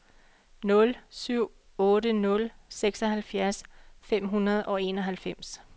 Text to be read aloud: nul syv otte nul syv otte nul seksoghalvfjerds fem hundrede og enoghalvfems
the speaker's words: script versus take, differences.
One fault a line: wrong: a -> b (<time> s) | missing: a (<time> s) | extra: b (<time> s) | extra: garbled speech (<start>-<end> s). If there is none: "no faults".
missing: syv otte nul (2.5 s)